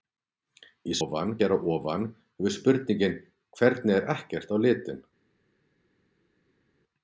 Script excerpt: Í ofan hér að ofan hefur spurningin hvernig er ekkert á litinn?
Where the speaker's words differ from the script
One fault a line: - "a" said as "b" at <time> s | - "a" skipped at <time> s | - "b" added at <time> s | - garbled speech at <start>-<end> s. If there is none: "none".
none